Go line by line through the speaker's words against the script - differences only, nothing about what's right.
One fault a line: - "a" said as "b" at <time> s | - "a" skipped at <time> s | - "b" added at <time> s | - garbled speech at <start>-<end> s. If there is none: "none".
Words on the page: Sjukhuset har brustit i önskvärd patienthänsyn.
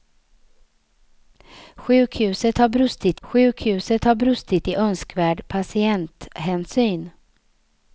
- "sjukhuset har brustit" added at 3.2 s